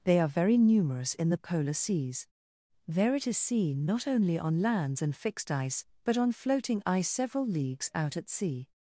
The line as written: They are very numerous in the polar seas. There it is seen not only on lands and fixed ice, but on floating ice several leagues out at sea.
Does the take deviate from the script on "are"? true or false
false